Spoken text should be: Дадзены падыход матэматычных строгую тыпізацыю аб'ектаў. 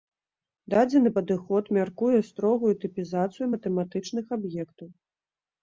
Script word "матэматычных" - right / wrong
wrong